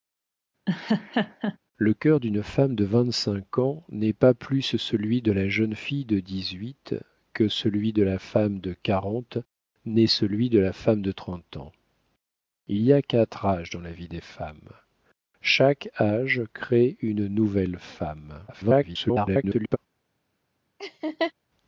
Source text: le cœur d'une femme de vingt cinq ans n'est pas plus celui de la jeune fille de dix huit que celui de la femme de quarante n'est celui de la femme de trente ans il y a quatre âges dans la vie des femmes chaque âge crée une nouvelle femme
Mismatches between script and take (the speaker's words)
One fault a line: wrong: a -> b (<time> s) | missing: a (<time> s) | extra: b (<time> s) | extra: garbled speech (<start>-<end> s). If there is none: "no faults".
extra: garbled speech (18.5-19.8 s)